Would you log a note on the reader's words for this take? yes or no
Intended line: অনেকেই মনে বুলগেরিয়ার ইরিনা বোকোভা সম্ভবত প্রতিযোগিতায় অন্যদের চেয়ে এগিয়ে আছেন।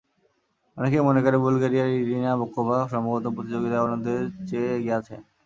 yes